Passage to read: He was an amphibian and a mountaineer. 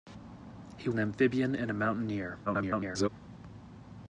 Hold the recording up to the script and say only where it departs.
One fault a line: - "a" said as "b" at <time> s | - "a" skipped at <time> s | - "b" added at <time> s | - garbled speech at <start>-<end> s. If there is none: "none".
- "was" skipped at 0.9 s
- garbled speech at 2.5-3.1 s